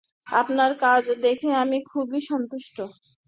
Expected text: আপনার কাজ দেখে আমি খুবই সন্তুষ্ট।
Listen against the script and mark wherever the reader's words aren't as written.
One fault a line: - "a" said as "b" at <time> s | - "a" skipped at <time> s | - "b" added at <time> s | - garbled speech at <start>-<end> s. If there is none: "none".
none